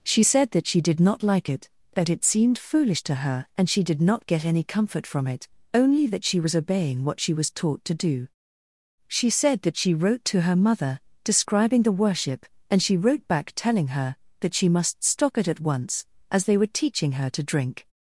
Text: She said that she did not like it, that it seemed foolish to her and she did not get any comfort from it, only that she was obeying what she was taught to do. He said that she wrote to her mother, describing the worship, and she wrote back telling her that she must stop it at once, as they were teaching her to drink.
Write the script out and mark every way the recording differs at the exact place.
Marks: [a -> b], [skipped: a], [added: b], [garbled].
She said that she did not like it, that it seemed foolish to her and she did not get any comfort from it, only that she was obeying what she was taught to do. [He -> She] said that she wrote to her mother, describing the worship, and she wrote back telling her that she must stop it at once, as they were teaching her to drink.